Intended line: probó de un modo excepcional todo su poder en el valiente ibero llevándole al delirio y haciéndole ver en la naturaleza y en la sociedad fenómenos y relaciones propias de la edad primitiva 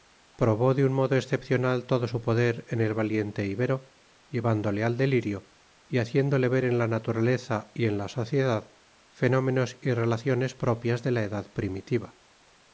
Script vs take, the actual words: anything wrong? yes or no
no